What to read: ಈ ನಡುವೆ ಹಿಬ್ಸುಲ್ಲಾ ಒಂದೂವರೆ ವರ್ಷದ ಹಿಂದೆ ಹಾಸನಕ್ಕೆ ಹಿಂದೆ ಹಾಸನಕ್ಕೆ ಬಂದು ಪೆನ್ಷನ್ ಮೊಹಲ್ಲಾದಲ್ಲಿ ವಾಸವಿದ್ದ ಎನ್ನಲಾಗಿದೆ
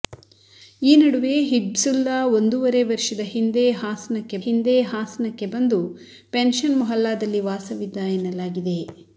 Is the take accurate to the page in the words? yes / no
yes